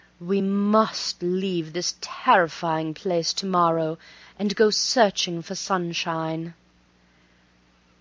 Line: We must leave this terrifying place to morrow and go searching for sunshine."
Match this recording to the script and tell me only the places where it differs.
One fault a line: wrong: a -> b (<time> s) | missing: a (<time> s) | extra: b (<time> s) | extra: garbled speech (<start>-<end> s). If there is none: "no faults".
no faults